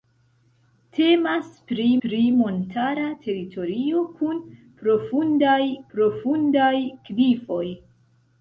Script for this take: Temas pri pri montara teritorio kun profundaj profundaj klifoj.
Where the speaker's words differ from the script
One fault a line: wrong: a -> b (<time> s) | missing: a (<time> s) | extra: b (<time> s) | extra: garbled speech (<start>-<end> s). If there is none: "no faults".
no faults